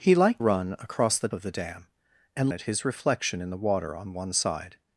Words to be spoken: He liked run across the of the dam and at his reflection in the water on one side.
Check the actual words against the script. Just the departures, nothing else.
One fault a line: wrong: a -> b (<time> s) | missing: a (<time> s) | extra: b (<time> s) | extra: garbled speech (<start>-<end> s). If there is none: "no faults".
no faults